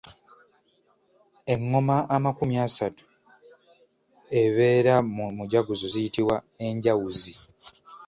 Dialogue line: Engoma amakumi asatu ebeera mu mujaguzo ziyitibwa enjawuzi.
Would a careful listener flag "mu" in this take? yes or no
no